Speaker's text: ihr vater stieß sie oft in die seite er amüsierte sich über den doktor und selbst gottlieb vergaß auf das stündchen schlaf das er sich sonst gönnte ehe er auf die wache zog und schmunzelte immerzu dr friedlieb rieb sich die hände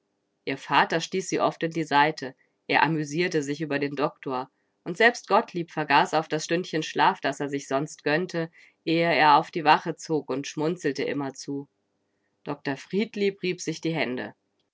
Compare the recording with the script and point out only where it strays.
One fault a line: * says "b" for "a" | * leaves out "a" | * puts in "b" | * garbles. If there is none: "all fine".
all fine